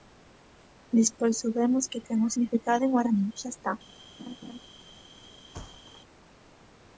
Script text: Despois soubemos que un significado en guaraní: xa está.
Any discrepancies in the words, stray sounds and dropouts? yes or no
yes